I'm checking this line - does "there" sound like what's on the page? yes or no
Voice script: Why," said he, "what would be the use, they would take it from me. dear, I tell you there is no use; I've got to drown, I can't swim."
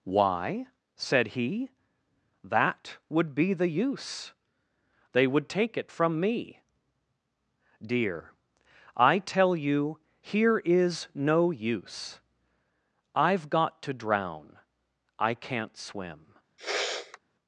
no